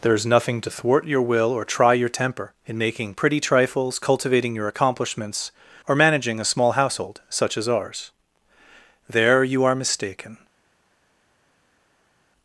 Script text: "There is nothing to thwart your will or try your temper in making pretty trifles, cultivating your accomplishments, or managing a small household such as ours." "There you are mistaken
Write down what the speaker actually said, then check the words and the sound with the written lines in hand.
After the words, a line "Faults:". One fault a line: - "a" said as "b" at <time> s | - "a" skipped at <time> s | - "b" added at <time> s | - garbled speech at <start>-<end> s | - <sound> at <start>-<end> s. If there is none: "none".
"There is nothing to thwart your will or try your temper in making pretty trifles, cultivating your accomplishments, or managing a small household such as ours." "There you are mistaken
Faults:
none